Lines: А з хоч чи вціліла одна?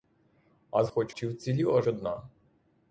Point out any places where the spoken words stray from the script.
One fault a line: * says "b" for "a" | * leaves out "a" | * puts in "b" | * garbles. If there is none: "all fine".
all fine